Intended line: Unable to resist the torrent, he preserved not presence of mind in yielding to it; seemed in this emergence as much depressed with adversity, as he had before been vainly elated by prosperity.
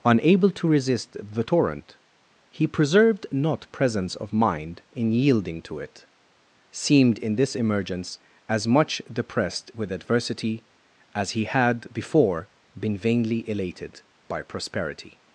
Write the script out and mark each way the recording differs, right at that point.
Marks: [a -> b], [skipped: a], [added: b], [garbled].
Unable to resist the torrent, he preserved not presence of mind in yielding to it; seemed in this emergence as much depressed with adversity, as he had before been vainly elated by prosperity.